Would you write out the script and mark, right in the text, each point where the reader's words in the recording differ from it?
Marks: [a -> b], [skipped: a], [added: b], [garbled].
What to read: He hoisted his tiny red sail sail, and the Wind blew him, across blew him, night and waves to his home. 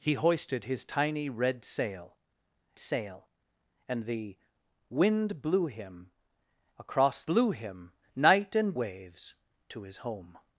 He hoisted his tiny red sail sail, and the Wind blew him, across blew him, night and waves to his home.